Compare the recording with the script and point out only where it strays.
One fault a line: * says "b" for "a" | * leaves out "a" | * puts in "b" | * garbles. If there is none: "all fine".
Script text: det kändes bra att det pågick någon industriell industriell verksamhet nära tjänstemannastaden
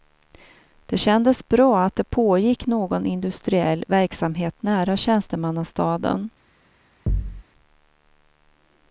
* leaves out "industriell"